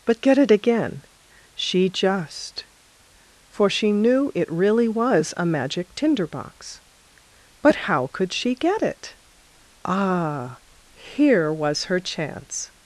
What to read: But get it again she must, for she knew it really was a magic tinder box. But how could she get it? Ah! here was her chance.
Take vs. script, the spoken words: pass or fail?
fail